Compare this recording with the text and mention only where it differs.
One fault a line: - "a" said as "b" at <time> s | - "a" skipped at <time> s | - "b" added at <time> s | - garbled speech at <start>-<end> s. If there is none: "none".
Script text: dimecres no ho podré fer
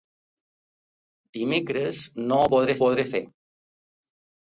- "podré" added at 2.8 s